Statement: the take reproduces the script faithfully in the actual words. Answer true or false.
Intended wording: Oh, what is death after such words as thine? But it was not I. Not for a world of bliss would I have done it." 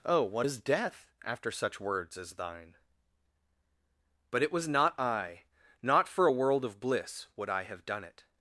true